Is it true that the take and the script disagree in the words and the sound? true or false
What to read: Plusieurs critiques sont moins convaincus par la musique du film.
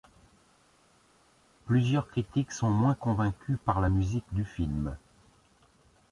false